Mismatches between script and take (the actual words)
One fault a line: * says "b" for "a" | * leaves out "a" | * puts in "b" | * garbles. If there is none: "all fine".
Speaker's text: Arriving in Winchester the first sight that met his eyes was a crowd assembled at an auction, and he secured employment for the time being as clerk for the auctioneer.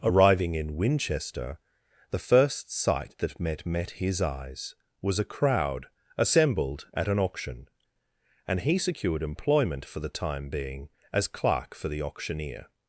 * puts in "met"